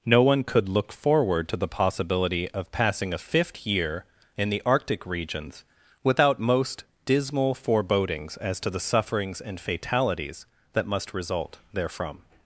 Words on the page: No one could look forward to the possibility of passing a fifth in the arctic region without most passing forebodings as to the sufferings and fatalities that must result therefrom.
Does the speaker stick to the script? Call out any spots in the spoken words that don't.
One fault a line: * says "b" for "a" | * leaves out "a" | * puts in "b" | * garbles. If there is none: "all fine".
* puts in "year"
* says "regions" for "region"
* says "dismal" for "passing"